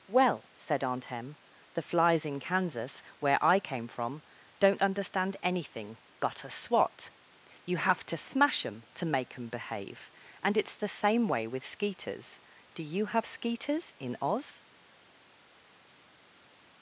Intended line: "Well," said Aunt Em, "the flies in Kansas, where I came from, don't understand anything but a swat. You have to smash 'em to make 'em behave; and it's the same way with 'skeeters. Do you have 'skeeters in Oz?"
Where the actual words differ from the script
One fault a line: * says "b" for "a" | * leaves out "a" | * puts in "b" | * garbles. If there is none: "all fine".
all fine